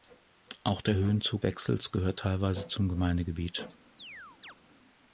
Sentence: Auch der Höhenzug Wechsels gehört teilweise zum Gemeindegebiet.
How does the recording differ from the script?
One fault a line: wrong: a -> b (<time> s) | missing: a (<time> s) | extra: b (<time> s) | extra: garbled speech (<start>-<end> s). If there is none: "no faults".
no faults